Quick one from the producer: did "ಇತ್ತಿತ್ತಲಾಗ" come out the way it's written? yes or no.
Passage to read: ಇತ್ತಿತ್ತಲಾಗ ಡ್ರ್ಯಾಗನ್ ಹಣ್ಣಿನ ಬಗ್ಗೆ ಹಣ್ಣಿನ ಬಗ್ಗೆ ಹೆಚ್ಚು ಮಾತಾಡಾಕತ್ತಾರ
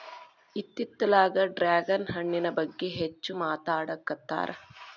yes